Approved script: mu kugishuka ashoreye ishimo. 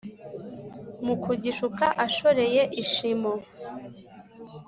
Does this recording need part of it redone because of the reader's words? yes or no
no